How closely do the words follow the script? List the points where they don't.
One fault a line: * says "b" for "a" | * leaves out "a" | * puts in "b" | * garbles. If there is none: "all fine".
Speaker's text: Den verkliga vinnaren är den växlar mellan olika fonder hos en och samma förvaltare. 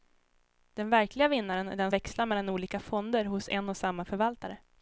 all fine